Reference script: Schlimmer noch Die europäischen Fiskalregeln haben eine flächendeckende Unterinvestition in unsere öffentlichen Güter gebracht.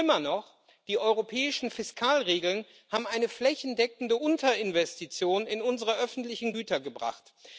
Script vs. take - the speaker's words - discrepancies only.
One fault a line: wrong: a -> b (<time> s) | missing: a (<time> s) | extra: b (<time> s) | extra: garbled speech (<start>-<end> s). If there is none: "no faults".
no faults